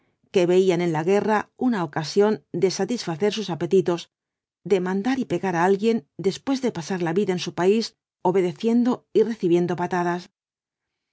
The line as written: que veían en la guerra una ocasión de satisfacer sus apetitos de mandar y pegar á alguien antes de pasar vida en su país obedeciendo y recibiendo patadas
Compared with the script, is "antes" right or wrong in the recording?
wrong